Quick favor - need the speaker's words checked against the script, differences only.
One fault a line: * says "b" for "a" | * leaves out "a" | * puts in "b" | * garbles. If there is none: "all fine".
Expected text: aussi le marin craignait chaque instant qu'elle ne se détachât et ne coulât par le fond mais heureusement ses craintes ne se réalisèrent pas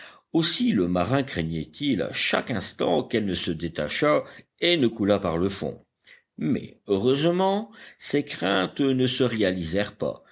* puts in "il à"